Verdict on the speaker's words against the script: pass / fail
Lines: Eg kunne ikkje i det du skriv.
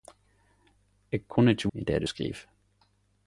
pass